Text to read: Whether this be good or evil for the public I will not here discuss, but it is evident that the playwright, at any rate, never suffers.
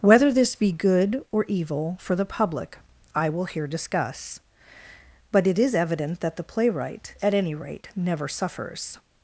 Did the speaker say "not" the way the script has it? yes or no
no